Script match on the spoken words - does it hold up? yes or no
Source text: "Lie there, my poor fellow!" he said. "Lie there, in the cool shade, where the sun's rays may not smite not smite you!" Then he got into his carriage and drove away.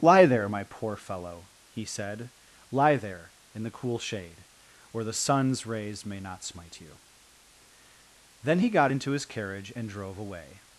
no